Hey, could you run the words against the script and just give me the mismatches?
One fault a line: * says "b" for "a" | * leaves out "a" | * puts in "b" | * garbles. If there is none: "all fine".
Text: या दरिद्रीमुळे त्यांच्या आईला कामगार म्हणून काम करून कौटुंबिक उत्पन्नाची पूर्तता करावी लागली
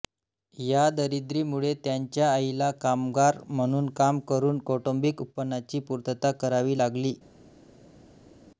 all fine